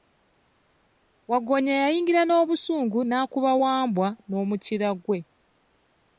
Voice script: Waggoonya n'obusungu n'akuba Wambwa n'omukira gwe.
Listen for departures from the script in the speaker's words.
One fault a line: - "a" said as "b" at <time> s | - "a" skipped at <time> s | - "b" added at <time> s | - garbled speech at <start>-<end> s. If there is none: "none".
- "yayingira" added at 1.8 s